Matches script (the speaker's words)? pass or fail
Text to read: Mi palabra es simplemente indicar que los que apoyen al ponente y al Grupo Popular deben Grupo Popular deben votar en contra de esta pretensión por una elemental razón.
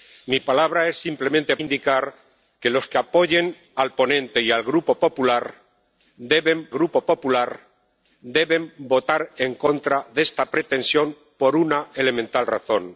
pass